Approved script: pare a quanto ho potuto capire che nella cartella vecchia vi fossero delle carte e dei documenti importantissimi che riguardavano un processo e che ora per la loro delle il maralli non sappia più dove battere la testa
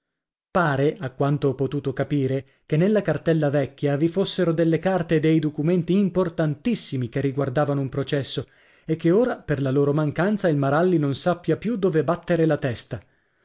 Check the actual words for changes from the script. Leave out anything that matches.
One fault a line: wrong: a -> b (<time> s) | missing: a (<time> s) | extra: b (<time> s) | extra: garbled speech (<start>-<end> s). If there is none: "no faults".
wrong: delle -> mancanza (9.9 s)